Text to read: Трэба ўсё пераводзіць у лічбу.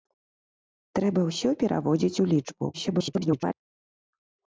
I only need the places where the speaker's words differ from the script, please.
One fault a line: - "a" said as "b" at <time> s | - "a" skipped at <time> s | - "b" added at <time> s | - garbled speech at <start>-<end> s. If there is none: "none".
- garbled speech at 2.7-3.5 s